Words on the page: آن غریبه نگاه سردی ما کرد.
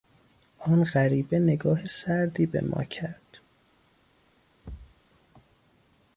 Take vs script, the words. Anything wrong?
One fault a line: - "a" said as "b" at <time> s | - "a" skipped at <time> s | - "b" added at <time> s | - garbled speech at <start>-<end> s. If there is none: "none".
- "به" added at 2.5 s